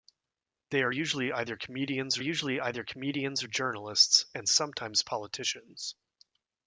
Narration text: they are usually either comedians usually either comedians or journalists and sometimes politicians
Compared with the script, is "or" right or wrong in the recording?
right